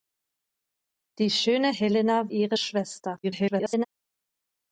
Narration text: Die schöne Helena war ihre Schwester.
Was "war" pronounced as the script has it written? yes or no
no